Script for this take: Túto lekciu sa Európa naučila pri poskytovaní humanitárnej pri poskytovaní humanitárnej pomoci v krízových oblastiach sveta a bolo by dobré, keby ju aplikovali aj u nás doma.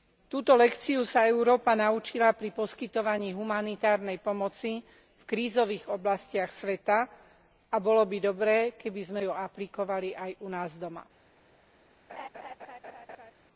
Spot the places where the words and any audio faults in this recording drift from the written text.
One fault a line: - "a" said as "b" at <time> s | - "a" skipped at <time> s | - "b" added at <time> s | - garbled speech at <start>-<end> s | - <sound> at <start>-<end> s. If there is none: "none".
- "pri poskytovaní humanitárnej" skipped at 4.2 s
- "sme" added at 9.0 s
- laugh at 12.1-13.3 s